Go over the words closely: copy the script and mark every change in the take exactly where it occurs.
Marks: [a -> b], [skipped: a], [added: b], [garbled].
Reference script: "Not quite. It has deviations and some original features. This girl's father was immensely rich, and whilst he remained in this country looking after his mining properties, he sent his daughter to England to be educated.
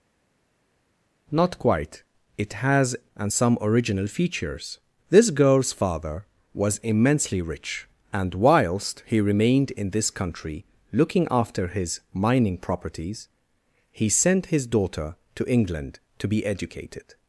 "Not quite. It has [skipped: deviations] and some original features. This girl's father was immensely rich, and whilst he remained in this country looking after his mining properties, he sent his daughter to England to be educated.